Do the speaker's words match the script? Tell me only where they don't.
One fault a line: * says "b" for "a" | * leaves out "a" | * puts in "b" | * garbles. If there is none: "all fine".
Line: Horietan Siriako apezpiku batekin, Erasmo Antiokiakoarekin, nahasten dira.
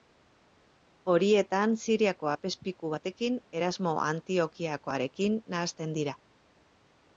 all fine